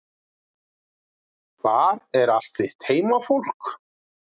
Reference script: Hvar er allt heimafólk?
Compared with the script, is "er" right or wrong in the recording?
right